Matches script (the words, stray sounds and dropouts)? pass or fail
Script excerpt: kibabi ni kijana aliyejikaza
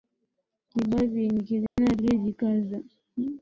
fail